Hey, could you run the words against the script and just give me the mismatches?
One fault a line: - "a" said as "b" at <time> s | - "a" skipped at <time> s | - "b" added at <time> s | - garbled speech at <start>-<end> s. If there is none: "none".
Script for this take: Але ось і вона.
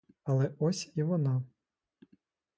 none